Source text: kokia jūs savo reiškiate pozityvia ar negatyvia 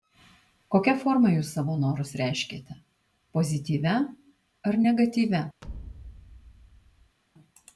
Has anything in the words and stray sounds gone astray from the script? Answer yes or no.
yes